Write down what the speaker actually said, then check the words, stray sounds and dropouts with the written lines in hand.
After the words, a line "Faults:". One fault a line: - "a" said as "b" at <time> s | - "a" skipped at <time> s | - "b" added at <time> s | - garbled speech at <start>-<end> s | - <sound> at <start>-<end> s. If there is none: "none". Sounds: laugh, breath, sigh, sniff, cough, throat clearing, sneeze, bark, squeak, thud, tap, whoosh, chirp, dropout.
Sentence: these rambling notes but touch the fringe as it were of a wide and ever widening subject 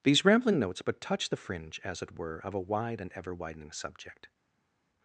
these rambling notes but touch the fringe as it were of a wide and ever widening subject
Faults:
none